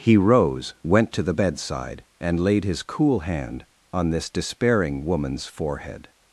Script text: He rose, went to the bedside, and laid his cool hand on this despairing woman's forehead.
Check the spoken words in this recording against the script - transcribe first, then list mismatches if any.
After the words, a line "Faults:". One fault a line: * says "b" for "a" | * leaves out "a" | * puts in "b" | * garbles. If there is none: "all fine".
He rose, went to the bedside, and laid his cool hand on this despairing woman's forehead.
Faults:
all fine